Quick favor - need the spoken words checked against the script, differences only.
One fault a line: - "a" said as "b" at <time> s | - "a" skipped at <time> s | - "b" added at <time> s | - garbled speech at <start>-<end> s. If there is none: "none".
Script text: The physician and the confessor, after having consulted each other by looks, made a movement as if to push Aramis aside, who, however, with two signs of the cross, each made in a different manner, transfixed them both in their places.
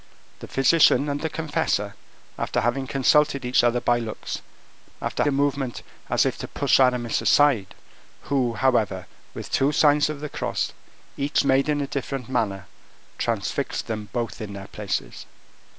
- "made" said as "after" at 5.0 s